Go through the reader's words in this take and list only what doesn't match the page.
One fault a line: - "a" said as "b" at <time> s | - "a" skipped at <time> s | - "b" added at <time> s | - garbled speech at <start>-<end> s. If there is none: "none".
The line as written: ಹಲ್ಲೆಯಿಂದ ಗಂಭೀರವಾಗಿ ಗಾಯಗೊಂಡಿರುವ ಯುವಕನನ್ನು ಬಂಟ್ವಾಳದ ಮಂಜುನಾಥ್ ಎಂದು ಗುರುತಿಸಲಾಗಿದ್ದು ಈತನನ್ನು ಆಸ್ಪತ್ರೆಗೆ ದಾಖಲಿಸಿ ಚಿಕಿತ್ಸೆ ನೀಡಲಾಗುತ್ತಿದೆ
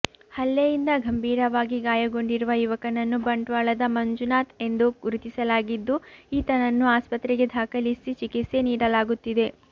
none